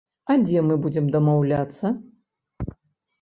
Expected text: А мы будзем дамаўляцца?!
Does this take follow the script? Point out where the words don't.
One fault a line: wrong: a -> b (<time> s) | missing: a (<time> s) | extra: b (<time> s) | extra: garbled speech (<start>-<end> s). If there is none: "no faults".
extra: дзе (0.5 s)